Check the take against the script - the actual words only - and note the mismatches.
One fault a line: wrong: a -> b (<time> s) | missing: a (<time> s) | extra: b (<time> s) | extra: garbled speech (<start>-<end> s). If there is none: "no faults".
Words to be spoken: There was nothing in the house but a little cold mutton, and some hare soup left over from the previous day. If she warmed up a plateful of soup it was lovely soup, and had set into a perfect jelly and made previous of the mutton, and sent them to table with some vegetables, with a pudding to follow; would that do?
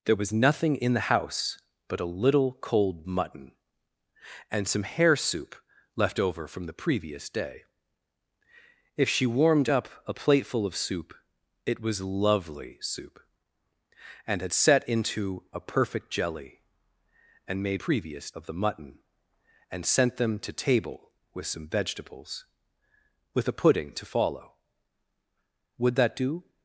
no faults